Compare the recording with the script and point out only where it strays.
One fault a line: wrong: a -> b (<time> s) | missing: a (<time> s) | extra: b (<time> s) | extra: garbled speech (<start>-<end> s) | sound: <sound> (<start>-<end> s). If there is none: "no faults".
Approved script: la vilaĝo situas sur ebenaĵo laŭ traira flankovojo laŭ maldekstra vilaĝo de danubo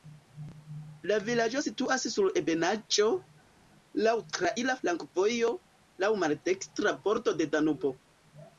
wrong: vilaĝo -> bordo (7.1 s)